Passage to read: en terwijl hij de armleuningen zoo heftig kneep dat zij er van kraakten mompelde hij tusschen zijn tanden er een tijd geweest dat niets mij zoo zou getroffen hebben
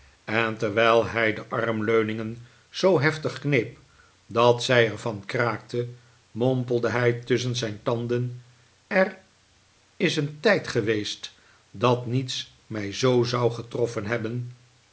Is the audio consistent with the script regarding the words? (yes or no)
no